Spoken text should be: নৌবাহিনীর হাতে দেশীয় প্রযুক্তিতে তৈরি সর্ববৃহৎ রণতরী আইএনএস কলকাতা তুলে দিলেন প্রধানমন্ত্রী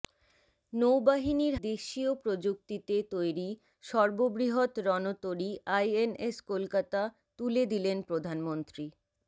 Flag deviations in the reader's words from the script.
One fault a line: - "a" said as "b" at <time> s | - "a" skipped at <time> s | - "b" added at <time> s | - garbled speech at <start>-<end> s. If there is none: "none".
- "হাতে" skipped at 1.6 s